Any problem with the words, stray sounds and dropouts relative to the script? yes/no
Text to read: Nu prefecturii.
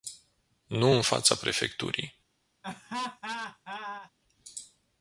yes